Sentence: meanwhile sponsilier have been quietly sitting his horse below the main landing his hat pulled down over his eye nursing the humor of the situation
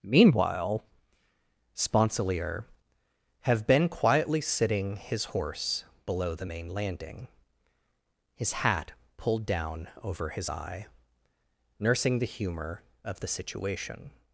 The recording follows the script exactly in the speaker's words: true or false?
true